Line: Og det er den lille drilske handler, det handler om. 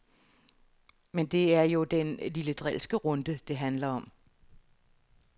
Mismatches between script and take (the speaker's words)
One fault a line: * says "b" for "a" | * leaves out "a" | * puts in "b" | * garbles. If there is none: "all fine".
* says "Men" for "Og"
* puts in "jo"
* says "runde" for "handler"